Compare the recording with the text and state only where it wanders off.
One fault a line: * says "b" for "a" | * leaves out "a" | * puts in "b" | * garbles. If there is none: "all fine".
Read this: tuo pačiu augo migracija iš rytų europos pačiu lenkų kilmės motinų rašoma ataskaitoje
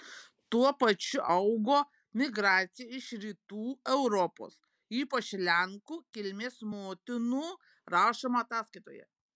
* says "ypač" for "pačiu"